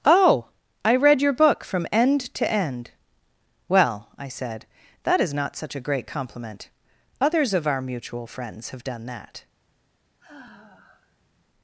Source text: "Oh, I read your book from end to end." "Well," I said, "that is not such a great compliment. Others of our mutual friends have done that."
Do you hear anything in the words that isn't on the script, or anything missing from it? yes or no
no